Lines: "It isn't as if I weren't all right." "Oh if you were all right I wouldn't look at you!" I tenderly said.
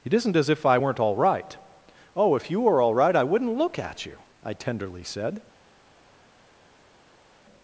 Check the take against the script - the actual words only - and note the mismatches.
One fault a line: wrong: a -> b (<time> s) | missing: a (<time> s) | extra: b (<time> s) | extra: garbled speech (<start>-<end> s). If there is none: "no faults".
no faults